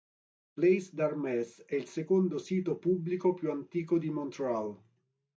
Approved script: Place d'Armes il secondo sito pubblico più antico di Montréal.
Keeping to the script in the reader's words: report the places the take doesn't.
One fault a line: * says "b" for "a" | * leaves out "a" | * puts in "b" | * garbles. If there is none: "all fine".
* puts in "è"